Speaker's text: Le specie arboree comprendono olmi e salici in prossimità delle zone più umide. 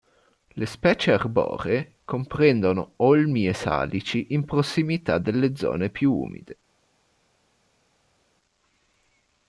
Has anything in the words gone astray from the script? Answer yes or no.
no